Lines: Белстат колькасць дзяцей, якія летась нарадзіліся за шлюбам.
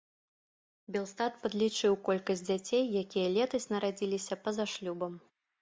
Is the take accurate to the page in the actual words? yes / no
no